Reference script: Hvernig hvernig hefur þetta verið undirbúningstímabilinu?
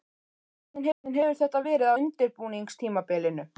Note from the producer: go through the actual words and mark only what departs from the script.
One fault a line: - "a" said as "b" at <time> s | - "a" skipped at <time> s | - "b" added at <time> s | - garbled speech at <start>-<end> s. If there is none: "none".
none